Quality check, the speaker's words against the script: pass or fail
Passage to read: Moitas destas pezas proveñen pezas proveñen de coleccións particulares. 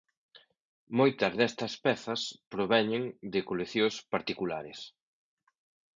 fail